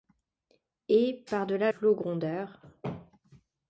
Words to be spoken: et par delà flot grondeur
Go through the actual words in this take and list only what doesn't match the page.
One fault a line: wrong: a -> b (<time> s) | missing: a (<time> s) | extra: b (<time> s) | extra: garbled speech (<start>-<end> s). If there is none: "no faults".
no faults